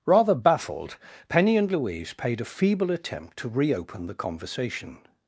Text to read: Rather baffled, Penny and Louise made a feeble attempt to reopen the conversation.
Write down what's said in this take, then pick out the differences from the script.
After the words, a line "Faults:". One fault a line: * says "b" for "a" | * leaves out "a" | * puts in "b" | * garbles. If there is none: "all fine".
Rather baffled, Penny and Louise paid a feeble attempt to reopen the conversation.
Faults:
* says "paid" for "made"